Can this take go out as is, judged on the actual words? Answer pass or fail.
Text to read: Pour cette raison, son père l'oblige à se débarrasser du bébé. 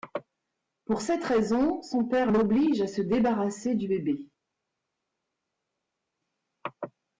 pass